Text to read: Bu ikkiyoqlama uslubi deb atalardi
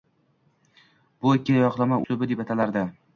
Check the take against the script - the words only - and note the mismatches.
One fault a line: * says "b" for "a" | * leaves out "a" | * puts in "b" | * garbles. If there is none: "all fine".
all fine